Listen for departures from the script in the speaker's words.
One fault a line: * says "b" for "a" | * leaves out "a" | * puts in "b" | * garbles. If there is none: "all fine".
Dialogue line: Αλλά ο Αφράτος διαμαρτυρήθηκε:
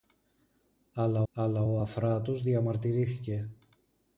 * puts in "αλλά"